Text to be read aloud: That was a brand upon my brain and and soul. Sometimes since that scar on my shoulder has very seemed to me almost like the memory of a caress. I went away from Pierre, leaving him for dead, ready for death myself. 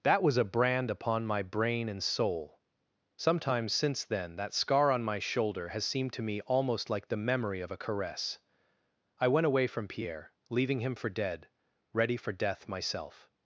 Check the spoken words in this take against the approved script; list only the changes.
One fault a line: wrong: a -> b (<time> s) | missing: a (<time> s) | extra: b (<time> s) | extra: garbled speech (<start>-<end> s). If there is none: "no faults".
missing: and (2.0 s)
extra: then (4.0 s)
missing: very (5.8 s)